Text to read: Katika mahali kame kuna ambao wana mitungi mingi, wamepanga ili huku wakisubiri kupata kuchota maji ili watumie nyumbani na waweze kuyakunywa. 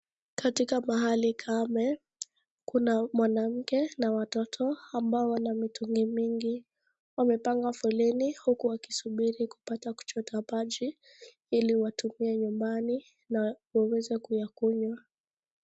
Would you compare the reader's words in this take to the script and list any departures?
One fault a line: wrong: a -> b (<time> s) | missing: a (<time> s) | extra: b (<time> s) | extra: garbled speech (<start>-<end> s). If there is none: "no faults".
extra: mwanamke na watoto (3.1 s)
wrong: ili -> foleni (7.7 s)